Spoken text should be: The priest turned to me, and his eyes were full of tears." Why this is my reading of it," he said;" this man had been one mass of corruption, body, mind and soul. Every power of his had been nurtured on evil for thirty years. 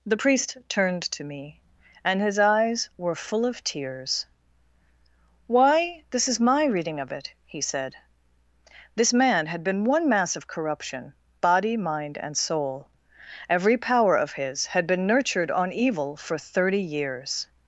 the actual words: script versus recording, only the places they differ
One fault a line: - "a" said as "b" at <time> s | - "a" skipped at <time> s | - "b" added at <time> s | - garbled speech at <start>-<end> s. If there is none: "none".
none